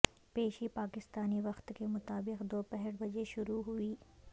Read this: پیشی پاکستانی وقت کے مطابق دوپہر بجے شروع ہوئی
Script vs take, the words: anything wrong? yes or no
no